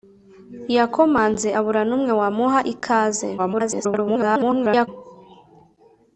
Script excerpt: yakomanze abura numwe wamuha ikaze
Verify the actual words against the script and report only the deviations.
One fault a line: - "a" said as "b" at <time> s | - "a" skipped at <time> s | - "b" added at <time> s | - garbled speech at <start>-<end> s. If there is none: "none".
- garbled speech at 3.4-4.9 s